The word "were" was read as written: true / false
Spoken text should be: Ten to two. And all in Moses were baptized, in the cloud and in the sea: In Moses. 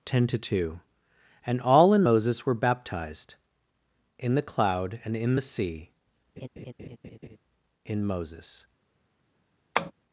true